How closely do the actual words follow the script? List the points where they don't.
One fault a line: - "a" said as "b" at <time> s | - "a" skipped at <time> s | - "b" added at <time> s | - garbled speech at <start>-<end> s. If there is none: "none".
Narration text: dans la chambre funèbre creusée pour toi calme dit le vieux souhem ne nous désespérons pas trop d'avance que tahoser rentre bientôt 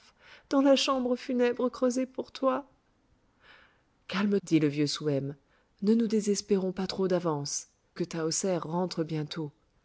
none